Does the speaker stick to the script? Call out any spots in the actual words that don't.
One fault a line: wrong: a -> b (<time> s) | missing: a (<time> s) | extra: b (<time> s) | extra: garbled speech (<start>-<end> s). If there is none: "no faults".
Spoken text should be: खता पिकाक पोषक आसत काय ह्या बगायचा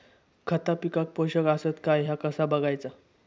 extra: कसा (2.1 s)